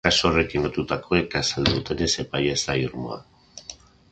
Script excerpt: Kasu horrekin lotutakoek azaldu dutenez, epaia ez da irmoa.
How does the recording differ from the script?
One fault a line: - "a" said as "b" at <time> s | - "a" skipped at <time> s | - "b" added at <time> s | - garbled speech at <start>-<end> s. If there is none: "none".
none